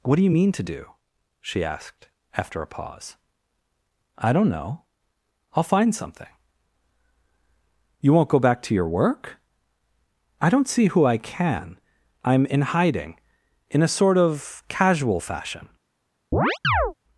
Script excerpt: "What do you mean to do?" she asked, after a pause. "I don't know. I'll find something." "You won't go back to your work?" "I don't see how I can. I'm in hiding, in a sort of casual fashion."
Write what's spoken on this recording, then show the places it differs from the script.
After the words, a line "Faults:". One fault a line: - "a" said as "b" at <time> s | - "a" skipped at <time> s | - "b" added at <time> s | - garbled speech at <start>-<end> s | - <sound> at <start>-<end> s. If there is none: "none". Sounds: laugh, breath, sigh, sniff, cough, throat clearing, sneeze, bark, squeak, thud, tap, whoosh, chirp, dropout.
"What do you mean to do?" she asked, after a pause. "I don't know. I'll find something." "You won't go back to your work?" "I don't see who I can. I'm in hiding, in a sort of casual fashion."
Faults:
- "how" said as "who" at 10.9 s
- chirp at 16.3-16.9 s